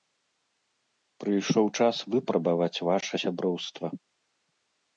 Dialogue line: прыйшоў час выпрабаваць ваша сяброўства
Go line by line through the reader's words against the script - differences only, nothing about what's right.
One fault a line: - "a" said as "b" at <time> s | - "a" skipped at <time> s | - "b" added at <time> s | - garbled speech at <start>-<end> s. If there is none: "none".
none